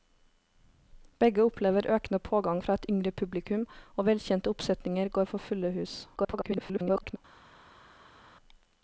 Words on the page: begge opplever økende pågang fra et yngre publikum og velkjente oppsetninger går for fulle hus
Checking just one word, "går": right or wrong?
right